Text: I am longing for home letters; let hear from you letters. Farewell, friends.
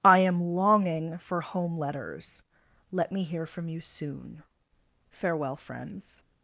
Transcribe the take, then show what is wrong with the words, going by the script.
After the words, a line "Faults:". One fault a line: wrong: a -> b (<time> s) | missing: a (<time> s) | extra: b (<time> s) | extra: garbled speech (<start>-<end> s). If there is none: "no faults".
I am longing for home letters; let me hear from you soon. Farewell, friends.
Faults:
extra: me (3.1 s)
wrong: letters -> soon (3.8 s)